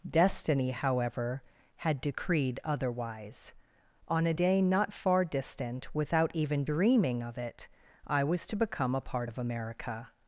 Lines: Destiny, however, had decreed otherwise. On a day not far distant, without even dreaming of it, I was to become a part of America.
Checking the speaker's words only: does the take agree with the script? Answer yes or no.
yes